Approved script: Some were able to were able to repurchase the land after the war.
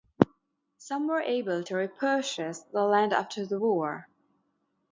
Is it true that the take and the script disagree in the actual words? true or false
true